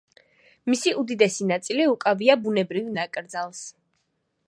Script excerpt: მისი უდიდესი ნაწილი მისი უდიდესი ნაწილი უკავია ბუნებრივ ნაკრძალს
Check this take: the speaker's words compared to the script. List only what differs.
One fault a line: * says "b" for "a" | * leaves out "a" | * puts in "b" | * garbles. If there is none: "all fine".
* leaves out "მისი უდიდესი ნაწილი"